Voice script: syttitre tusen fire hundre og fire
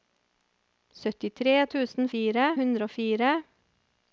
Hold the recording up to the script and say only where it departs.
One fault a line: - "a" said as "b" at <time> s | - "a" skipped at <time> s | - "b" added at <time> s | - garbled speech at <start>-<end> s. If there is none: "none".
none